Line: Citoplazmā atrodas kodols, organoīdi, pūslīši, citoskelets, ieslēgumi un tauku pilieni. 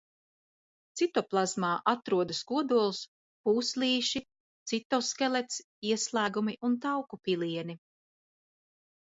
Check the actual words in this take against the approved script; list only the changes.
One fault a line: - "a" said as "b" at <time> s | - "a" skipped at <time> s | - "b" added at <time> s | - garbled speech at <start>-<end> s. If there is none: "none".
- "organoīdi" skipped at 3.0 s